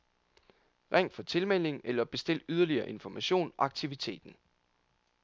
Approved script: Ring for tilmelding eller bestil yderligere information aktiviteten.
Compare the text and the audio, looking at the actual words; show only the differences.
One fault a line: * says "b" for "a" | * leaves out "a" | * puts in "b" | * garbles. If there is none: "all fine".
all fine